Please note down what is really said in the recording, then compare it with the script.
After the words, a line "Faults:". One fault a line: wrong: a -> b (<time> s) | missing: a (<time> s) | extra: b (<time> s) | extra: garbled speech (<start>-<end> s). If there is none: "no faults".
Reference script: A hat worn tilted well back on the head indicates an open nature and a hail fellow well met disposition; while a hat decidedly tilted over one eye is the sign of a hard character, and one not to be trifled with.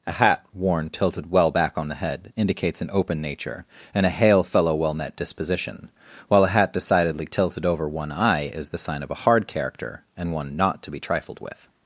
A hat worn tilted well back on the head indicates an open nature and a hail fellow well met disposition; while a hat decidedly tilted over one eye is the sign of a hard character, and one not to be trifled with.
Faults:
no faults